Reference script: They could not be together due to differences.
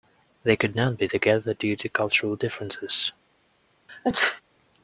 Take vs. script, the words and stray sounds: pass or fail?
fail